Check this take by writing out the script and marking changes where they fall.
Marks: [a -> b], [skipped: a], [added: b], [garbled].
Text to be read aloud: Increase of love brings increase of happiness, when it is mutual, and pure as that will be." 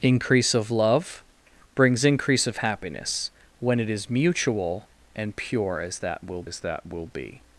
Increase of love brings increase of happiness, when it is mutual, and pure as that will [added: as that will] be."